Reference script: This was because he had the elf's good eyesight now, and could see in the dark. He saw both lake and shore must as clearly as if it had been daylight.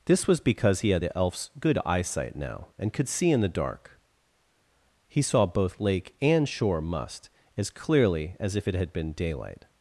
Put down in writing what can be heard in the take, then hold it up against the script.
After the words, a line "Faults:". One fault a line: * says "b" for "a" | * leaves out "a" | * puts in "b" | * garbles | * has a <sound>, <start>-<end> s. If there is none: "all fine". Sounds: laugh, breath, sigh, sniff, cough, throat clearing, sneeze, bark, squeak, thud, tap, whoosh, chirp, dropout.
This was because he had the elf's good eyesight now, and could see in the dark. He saw both lake and shore must as clearly as if it had been daylight.
Faults:
all fine